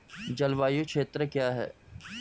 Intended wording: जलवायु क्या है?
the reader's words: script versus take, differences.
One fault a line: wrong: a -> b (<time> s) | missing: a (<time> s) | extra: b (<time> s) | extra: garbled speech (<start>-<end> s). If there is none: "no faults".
extra: क्षेत्र (0.8 s)